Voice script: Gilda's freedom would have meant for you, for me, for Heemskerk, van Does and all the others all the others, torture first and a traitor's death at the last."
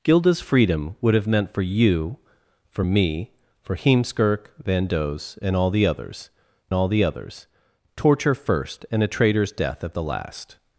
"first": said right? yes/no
yes